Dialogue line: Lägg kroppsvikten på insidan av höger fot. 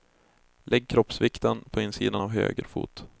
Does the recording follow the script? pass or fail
pass